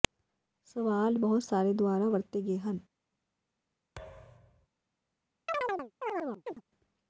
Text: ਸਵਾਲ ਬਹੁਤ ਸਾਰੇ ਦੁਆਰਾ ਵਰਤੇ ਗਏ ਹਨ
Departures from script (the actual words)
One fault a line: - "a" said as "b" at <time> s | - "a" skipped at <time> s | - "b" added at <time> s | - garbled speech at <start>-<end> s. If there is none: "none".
none